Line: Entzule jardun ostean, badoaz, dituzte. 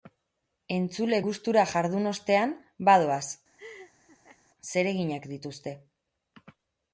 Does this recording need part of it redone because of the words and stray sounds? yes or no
yes